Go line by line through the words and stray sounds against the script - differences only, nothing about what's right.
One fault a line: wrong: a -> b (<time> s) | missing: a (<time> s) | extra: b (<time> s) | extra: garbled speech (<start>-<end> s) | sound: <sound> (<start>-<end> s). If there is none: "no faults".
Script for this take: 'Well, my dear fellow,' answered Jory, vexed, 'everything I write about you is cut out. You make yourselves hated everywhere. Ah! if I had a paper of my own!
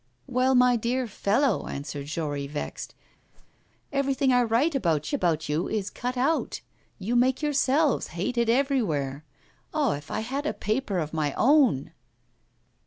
sound: whoosh (3.3-3.7 s)
extra: about (5.1 s)